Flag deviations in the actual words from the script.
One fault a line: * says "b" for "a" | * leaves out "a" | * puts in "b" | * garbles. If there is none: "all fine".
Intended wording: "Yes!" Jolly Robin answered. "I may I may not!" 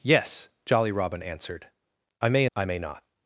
all fine